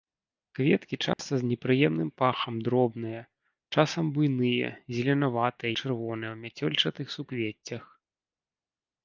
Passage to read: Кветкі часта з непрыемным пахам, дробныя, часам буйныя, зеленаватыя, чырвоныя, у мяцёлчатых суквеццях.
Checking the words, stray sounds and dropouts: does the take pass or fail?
fail